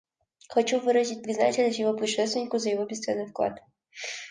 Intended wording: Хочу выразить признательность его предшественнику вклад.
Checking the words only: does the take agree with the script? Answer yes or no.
no